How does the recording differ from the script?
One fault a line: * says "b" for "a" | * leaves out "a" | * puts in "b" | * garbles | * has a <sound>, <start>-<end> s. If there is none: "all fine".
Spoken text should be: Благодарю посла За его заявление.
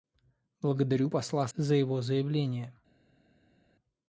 all fine